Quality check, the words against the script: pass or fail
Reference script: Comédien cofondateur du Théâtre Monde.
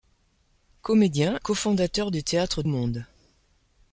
pass